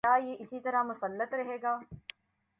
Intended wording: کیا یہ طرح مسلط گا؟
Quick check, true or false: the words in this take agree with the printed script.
false